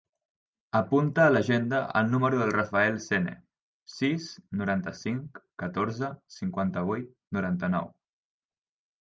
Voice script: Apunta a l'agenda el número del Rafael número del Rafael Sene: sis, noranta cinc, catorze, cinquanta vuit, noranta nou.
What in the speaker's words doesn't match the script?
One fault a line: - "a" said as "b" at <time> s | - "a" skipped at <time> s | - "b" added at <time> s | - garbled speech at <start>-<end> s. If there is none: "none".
- "número del Rafael" skipped at 3.0 s